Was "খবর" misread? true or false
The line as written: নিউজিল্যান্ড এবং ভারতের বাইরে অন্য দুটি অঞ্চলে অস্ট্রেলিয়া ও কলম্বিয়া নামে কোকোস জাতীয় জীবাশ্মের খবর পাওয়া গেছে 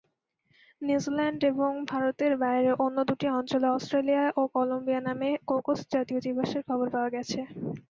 false